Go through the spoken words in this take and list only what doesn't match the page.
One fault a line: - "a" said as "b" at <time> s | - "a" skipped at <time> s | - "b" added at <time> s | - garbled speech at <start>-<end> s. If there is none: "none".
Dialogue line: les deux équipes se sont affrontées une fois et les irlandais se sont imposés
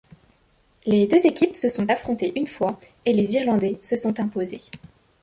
none